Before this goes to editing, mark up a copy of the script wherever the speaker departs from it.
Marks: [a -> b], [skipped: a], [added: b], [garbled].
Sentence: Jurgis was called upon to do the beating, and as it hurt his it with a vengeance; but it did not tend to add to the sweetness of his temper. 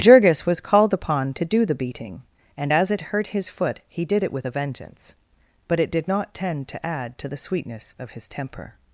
Jurgis was called upon to do the beating, and as it hurt his [added: foot he did] it with a vengeance; but it did not tend to add to the sweetness of his temper.